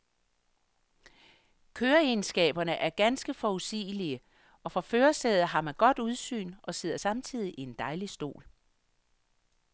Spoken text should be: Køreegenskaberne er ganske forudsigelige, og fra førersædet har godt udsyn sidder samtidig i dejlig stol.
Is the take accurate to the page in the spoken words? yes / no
no